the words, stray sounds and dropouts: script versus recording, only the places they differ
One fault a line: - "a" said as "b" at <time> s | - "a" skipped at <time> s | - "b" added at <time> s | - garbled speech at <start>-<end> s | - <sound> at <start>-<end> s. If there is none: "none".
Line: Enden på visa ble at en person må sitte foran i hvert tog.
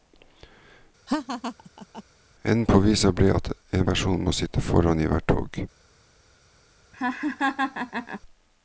- laugh at 1.1-2.0 s
- laugh at 6.9-8.2 s